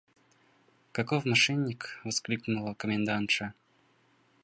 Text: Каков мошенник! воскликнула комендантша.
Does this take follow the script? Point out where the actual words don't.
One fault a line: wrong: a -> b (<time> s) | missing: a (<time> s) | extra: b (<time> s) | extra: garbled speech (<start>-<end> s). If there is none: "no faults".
no faults